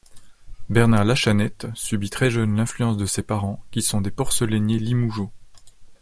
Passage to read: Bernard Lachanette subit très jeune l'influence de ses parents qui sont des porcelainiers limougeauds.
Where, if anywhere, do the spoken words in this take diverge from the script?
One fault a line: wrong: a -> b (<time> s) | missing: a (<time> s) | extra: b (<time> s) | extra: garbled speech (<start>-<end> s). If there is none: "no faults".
no faults